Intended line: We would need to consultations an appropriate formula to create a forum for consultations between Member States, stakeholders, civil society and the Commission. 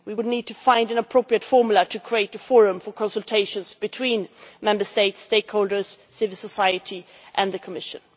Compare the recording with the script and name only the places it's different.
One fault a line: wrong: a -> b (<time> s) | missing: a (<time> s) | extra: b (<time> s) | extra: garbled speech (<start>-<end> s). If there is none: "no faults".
wrong: consultations -> find (0.5 s)